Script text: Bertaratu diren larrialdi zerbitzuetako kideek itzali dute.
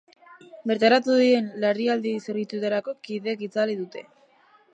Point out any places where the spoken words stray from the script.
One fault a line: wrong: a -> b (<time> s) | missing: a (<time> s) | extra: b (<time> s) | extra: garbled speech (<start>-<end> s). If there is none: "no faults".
no faults